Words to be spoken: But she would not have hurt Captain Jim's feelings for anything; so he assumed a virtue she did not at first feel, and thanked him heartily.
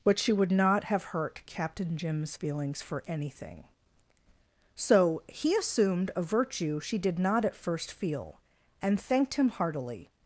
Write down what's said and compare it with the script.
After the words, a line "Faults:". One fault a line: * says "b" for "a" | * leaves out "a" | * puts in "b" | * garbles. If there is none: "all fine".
But she would not have hurt Captain Jim's feelings for anything; so he assumed a virtue she did not at first feel, and thanked him heartily.
Faults:
all fine